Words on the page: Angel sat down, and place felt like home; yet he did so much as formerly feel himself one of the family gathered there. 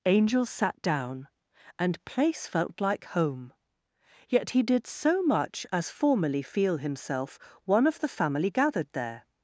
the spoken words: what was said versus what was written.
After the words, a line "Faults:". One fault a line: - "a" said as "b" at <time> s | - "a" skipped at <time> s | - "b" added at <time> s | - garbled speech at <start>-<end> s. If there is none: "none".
Angel sat down, and place felt like home; yet he did so much as formerly feel himself one of the family gathered there.
Faults:
none